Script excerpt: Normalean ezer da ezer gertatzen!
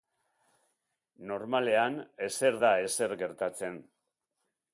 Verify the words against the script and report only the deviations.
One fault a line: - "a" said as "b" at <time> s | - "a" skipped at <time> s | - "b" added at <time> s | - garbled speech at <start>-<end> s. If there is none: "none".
none